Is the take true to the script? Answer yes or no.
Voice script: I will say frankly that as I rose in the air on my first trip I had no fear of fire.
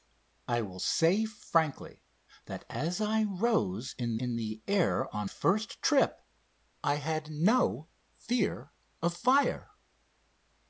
no